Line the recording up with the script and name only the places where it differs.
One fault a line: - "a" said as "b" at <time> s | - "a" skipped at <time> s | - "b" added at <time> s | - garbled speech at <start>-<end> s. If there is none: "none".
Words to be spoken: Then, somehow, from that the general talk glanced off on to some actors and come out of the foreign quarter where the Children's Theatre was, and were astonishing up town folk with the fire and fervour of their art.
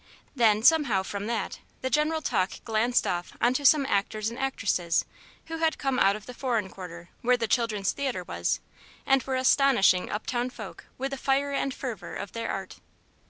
- "actresses who had" added at 4.4 s